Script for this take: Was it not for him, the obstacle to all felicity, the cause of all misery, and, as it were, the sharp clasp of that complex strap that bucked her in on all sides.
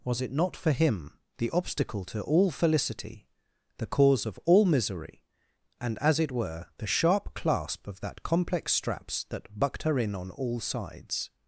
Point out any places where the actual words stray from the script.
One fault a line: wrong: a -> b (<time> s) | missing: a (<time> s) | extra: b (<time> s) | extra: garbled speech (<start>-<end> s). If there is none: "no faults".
wrong: strap -> straps (8.7 s)